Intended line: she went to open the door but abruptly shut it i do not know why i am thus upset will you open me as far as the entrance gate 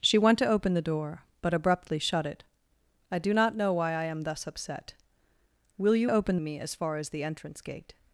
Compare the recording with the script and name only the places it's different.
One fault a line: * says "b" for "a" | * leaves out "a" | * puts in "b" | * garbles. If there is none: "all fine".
all fine